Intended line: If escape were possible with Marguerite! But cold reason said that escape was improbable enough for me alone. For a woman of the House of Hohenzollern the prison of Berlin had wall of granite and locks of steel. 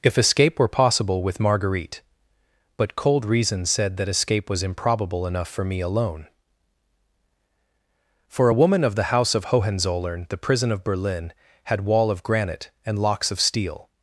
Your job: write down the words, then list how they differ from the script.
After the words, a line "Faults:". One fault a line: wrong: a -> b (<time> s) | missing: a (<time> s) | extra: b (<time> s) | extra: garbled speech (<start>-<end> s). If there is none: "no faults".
If escape were possible with Marguerite! But cold reason said that escape was improbable enough for me alone. For a woman of the House of Hohenzollern the prison of Berlin had wall of granite and locks of steel.
Faults:
no faults